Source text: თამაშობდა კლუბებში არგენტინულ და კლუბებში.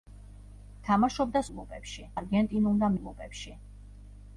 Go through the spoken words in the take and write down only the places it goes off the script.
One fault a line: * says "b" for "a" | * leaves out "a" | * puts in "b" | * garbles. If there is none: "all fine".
all fine